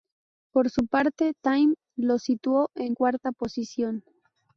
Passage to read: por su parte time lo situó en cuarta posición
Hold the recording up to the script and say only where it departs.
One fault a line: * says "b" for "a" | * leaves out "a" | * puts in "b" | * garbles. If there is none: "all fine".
all fine